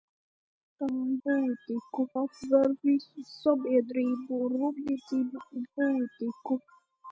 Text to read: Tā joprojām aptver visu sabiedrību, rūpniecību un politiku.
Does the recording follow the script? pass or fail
fail